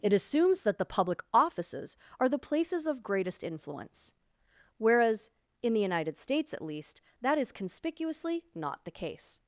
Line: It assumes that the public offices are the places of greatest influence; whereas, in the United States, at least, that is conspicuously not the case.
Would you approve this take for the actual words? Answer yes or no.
yes